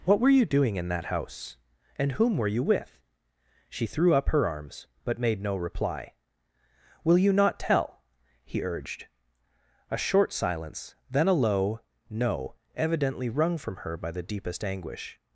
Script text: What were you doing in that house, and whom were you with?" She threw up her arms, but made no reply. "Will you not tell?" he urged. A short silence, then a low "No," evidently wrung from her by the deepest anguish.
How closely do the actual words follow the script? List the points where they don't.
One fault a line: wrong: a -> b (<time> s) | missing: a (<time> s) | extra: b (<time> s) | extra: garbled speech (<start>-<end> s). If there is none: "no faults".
no faults